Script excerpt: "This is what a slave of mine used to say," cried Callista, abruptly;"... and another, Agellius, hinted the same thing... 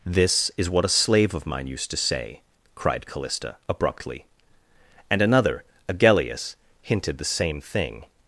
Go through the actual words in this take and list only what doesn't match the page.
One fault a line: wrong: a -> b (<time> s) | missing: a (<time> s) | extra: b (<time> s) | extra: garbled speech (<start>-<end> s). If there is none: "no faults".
no faults